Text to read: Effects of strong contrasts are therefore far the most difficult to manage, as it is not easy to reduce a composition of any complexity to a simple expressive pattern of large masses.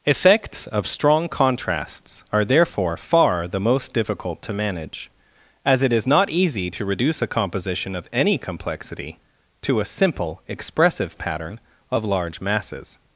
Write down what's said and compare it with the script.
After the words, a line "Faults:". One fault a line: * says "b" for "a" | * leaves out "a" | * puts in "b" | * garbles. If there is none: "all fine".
Effects of strong contrasts are therefore far the most difficult to manage, as it is not easy to reduce a composition of any complexity to a simple expressive pattern of large masses.
Faults:
all fine